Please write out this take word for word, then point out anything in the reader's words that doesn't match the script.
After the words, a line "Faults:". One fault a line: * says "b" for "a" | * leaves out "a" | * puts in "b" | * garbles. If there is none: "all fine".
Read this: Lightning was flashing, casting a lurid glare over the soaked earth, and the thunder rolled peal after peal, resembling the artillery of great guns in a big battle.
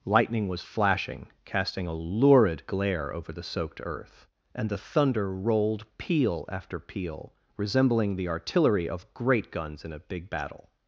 Lightning was flashing, casting a lurid glare over the soaked earth, and the thunder rolled peal after peal, resembling the artillery of great guns in a big battle.
Faults:
all fine